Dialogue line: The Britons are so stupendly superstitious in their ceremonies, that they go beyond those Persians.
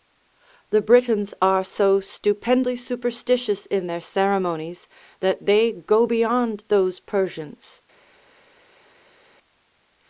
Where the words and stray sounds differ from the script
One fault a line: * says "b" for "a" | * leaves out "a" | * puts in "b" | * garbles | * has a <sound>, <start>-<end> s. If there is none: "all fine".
all fine